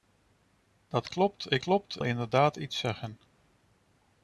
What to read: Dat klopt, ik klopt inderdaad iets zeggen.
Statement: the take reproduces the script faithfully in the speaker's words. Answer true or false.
true